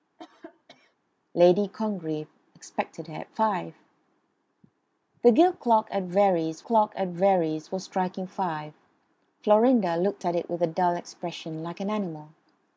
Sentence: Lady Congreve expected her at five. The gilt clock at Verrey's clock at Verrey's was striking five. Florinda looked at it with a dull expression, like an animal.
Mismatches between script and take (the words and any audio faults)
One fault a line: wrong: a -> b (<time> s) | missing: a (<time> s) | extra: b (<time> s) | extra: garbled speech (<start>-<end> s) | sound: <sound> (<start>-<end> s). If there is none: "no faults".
sound: cough (0.2-1.0 s)